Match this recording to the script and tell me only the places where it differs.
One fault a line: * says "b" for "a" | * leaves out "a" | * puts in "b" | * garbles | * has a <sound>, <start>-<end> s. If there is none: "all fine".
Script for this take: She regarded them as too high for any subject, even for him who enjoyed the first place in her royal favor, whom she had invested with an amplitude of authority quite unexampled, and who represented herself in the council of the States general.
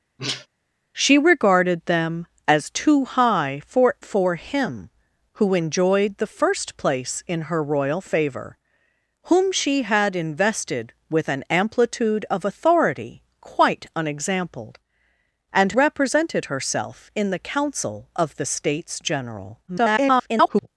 * has a sneeze, 0.2-0.5 s
* leaves out "any subject even"
* leaves out "who"
* garbles